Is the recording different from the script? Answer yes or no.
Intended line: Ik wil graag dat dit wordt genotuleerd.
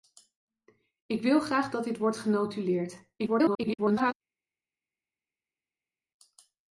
yes